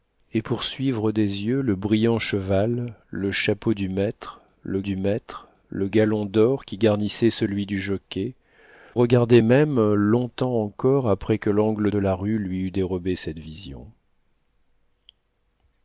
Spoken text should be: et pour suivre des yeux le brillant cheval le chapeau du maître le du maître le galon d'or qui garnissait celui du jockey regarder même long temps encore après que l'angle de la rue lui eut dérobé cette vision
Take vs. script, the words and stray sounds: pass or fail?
pass